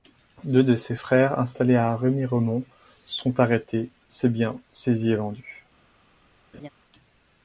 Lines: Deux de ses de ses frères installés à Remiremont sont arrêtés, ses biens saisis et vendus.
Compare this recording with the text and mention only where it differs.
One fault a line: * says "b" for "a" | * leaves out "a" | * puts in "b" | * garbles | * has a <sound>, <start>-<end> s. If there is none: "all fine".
* leaves out "de ses"
* has a laugh, 6.5-6.7 s